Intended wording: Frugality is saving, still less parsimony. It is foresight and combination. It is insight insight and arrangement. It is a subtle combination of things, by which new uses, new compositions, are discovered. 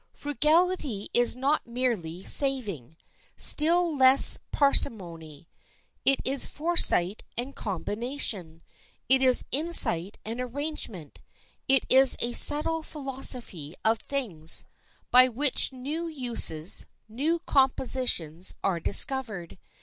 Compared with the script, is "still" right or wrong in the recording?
right